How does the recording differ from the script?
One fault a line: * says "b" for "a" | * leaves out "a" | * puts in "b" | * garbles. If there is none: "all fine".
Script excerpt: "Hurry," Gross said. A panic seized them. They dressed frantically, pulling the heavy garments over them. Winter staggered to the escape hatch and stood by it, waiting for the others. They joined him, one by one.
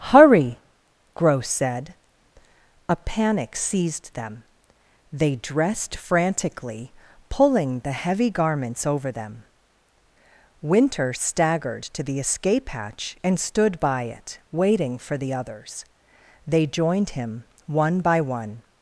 all fine